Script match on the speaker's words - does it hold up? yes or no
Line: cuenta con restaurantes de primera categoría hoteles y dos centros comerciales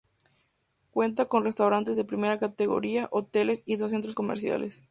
yes